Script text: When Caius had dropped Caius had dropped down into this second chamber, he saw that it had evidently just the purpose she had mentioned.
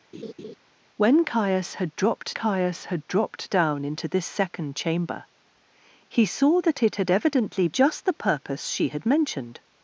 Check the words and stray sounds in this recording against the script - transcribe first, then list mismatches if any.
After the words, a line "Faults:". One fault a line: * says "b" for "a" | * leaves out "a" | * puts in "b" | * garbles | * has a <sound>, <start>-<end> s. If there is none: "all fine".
When Caius had dropped Caius had dropped down into this second chamber, he saw that it had evidently just the purpose she had mentioned.
Faults:
* has a laugh, 0.1-0.6 s